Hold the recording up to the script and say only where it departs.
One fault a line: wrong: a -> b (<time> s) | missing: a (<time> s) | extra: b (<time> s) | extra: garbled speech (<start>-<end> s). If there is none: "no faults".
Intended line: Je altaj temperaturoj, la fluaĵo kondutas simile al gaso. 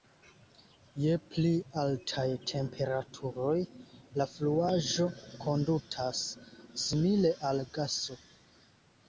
extra: pli (1.3 s)